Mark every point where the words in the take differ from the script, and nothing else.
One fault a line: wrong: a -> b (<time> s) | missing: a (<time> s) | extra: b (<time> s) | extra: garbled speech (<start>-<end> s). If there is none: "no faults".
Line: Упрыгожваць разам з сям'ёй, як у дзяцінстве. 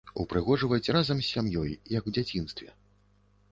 no faults